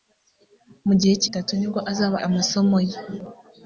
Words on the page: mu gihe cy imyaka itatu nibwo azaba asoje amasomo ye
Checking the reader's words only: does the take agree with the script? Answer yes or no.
no